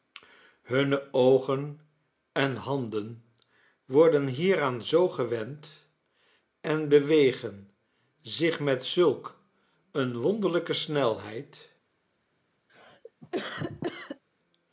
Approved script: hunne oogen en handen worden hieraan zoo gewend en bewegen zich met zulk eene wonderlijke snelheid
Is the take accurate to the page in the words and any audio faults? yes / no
no